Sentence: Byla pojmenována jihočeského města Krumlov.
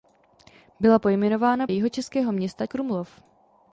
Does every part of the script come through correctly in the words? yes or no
yes